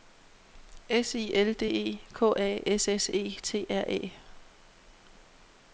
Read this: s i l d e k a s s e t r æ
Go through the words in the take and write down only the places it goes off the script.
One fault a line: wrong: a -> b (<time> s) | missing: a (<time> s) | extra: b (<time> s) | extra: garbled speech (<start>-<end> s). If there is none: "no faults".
no faults